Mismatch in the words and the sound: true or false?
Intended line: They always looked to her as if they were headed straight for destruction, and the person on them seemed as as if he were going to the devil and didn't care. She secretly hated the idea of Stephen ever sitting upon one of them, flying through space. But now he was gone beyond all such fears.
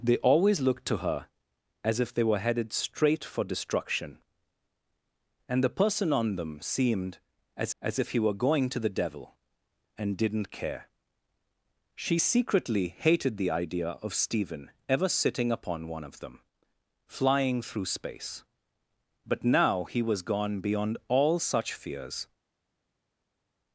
false